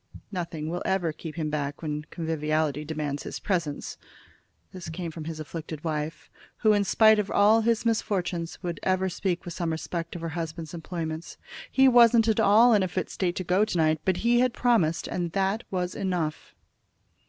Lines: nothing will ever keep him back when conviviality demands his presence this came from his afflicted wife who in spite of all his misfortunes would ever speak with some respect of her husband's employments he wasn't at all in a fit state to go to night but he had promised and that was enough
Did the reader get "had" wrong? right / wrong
right